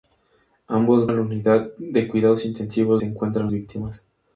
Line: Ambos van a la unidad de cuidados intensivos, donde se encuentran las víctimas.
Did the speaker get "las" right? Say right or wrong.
wrong